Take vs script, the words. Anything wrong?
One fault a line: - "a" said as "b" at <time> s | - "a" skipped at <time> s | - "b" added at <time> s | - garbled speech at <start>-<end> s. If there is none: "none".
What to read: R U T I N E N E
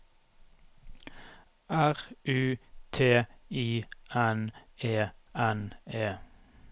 none